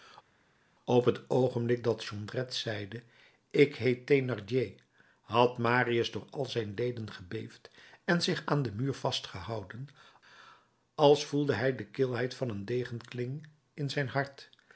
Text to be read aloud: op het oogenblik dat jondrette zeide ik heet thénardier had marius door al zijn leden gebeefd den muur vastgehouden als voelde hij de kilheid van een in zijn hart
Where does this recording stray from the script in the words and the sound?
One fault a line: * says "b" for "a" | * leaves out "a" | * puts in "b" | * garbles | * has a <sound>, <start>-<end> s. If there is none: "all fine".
* puts in "en zich aan"
* puts in "degenkling"